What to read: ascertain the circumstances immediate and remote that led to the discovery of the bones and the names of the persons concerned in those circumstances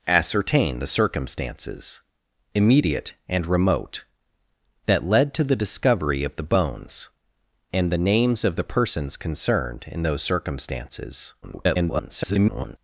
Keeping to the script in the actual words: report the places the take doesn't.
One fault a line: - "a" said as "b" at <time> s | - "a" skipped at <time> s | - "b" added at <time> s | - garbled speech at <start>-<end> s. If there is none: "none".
- garbled speech at 11.4-12.8 s